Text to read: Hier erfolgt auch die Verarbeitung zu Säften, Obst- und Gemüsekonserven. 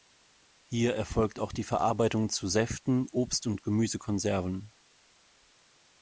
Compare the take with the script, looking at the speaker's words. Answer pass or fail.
pass